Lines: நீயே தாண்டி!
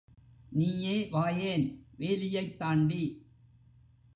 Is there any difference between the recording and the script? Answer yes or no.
yes